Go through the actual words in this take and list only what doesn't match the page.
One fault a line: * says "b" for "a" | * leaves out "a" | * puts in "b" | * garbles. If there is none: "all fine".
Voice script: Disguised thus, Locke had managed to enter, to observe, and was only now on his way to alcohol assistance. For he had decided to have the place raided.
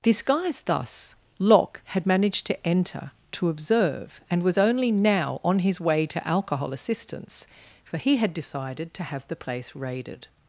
all fine